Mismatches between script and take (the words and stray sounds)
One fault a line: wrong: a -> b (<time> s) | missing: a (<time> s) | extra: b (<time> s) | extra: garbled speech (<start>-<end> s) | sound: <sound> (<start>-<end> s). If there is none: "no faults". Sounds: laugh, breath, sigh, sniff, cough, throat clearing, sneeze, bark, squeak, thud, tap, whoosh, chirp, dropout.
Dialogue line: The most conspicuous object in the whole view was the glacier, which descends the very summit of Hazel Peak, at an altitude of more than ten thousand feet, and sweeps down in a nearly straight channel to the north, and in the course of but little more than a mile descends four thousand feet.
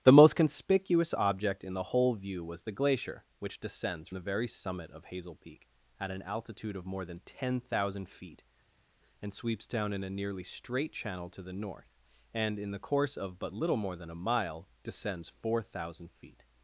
no faults